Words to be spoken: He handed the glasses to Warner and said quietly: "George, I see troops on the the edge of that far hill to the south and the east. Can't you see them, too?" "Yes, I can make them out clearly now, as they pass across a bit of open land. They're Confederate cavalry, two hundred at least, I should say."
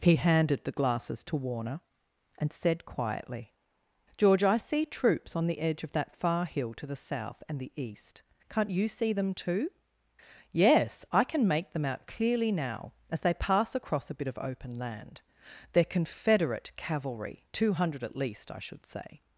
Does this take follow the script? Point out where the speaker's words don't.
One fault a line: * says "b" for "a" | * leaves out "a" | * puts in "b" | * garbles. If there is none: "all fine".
* leaves out "the"